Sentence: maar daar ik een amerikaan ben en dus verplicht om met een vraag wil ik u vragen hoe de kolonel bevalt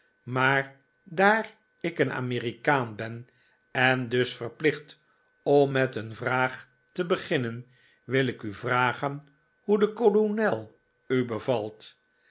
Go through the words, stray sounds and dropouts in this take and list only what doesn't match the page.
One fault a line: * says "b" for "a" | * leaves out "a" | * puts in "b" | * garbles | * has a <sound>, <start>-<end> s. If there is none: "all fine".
* puts in "te beginnen"
* puts in "u"